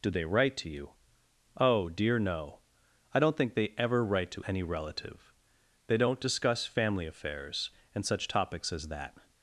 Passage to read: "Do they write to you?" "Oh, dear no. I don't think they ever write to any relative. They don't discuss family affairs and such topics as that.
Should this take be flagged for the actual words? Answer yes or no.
no